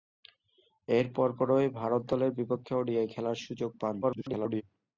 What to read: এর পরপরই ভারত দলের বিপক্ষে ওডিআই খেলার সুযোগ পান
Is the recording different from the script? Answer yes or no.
yes